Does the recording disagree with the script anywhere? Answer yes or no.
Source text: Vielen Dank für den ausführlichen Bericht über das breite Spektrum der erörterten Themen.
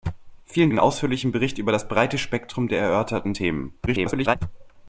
yes